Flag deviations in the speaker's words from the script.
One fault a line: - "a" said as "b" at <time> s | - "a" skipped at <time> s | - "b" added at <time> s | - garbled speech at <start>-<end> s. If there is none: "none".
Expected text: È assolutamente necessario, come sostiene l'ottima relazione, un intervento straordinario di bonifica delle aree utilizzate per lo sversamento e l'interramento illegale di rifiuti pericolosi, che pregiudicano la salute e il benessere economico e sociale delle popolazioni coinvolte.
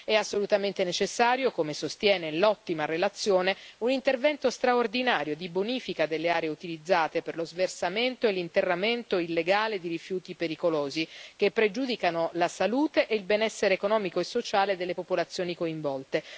none